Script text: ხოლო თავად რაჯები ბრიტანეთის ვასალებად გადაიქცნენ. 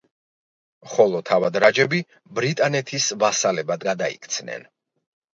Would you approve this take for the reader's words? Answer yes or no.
yes